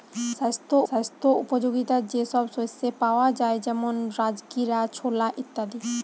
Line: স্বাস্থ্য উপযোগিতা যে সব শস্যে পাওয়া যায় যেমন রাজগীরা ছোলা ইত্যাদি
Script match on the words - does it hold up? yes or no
no